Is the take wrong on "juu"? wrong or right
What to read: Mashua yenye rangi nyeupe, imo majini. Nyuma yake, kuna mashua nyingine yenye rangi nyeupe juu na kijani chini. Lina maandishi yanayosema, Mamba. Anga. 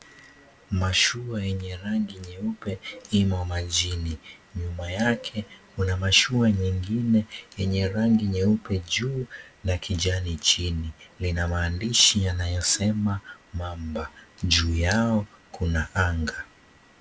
right